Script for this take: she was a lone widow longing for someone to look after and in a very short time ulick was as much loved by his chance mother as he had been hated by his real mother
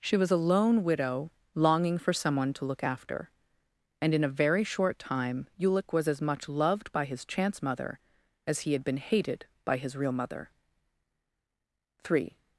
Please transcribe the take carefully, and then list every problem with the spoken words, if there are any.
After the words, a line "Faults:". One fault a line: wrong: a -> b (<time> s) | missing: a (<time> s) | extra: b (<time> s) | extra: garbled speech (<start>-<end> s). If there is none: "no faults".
she was a lone widow longing for someone to look after and in a very short time ulick was as much loved by his chance mother as he had been hated by his real mother three
Faults:
extra: three (12.0 s)